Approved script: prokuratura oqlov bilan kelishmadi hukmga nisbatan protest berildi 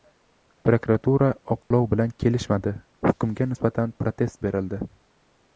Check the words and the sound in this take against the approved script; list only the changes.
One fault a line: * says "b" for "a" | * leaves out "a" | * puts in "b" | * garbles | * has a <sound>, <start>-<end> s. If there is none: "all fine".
* has a dropout, 1.6-1.7 s